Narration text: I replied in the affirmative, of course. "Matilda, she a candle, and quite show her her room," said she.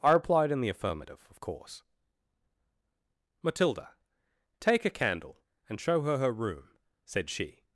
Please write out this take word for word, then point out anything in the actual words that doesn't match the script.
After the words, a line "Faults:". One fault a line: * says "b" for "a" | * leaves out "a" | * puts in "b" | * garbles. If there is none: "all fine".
I replied in the affirmative, of course. "Matilda, take a candle, and show her her room," said she.
Faults:
* says "take" for "she"
* leaves out "quite"